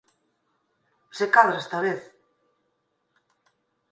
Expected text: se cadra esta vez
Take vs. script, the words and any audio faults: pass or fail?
pass